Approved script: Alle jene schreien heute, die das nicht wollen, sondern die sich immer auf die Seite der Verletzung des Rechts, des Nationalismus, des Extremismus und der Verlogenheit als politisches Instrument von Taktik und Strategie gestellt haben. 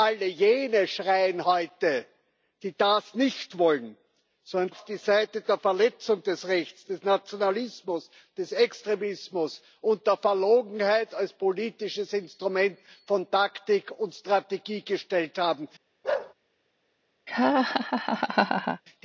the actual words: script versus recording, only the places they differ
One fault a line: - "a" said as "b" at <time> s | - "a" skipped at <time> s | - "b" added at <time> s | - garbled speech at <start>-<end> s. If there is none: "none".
- "die sich immer" skipped at 4.7 s